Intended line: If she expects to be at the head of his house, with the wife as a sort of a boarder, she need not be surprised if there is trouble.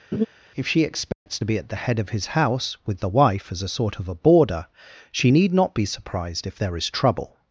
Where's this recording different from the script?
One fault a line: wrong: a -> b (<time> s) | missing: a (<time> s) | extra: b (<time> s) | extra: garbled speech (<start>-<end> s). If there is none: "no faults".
no faults